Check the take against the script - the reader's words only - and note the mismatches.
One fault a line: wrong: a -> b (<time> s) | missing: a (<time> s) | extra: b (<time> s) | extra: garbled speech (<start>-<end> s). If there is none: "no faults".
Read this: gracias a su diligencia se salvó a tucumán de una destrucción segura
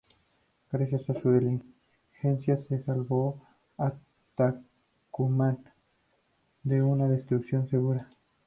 no faults